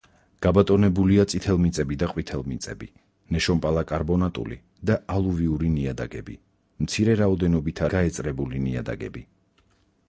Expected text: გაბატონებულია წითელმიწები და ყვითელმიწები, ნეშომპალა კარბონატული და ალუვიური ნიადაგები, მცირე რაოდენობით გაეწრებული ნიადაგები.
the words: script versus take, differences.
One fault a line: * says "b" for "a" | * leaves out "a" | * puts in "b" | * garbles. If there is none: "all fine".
all fine